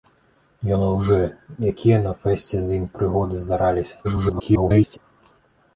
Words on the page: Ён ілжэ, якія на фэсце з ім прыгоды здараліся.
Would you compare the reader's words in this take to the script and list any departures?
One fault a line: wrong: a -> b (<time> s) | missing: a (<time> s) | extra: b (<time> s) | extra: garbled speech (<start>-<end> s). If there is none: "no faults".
extra: garbled speech (4.0-5.0 s)